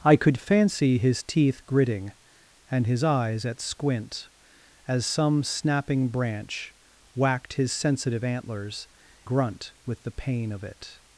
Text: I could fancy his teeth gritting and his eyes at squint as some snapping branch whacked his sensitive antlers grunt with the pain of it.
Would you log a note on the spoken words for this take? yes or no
no